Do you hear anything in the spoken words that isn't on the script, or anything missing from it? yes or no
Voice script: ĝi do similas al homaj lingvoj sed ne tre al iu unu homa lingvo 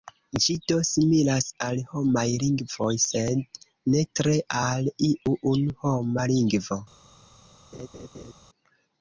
no